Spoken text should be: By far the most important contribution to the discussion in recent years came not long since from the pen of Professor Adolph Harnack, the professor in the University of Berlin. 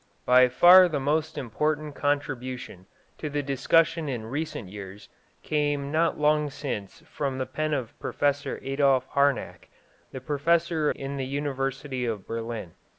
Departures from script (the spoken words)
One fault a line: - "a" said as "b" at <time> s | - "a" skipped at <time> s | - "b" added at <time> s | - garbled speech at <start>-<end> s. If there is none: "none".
none